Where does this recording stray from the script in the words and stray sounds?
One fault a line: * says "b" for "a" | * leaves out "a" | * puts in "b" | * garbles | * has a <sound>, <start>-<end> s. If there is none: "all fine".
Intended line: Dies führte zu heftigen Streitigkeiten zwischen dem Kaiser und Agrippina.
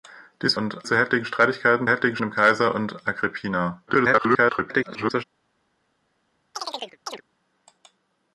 * says "und" for "führte"
* says "heftigen" for "zwischen"
* garbles
* has a chirp, 6.5-7.2 s